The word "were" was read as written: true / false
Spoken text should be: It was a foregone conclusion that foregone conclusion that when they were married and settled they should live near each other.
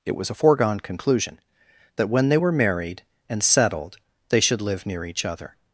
true